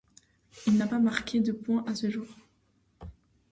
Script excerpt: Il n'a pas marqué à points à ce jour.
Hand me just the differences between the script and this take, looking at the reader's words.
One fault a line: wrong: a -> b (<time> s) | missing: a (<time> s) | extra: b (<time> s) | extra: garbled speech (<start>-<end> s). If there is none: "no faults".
wrong: à -> de (1.4 s)